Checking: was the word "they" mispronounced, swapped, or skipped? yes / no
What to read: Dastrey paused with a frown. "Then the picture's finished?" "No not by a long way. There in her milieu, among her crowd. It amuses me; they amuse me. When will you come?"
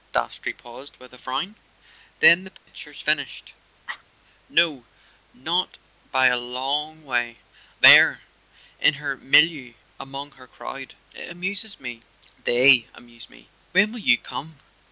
no